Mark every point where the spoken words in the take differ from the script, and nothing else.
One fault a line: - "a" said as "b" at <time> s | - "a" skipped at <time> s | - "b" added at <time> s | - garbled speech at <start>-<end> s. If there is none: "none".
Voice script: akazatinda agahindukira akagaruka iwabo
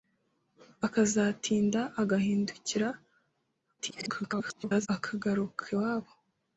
- garbled speech at 3.8-4.9 s